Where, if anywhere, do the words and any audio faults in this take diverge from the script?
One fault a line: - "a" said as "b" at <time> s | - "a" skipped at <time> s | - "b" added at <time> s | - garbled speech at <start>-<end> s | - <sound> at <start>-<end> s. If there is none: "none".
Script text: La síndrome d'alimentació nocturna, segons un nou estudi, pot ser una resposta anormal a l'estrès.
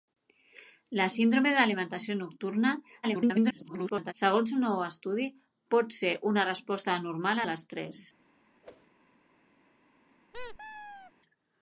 - garbled speech at 3.0-4.1 s
- whoosh at 8.6-8.9 s
- squeak at 10.3-11.1 s